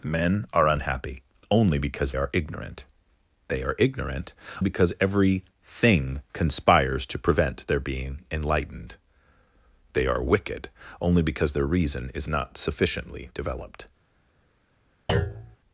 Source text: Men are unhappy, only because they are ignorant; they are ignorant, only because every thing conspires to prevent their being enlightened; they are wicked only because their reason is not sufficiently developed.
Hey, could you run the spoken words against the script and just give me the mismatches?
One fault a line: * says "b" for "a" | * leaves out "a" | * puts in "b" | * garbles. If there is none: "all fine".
* leaves out "they"
* leaves out "only"